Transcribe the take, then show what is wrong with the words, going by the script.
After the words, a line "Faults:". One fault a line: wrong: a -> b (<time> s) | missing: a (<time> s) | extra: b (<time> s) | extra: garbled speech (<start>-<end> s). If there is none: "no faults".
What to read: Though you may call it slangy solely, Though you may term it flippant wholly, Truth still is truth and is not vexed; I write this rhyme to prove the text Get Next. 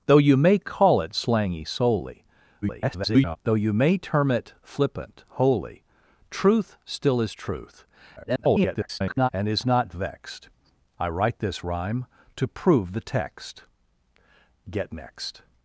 Though you may call it slangy solely, [garbled] Though you may term it flippant wholly, Truth still is truth [garbled] and is not vexed; I write this rhyme to prove the text Get Next.
Faults:
extra: garbled speech (2.6-3.4 s)
extra: garbled speech (8.2-9.3 s)